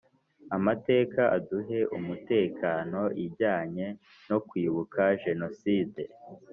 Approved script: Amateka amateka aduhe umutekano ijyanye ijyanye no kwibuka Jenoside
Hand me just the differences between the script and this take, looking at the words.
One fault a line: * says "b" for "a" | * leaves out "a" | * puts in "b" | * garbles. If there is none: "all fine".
* leaves out "amateka"
* leaves out "ijyanye"